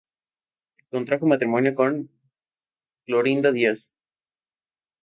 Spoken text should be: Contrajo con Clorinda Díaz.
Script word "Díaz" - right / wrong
right